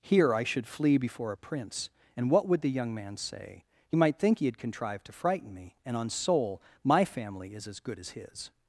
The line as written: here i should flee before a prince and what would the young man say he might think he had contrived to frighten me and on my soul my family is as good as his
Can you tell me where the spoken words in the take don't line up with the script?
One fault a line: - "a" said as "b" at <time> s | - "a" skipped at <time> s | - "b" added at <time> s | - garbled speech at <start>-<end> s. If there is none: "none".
- "my" skipped at 6.1 s